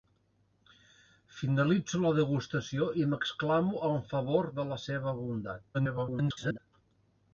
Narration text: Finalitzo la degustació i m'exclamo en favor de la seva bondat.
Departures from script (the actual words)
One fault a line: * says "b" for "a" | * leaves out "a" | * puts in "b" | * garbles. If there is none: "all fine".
* garbles